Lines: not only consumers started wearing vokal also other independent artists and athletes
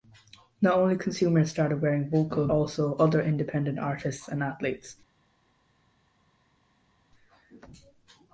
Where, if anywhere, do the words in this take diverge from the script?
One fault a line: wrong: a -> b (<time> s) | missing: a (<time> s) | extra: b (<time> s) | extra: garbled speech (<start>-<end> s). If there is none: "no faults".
no faults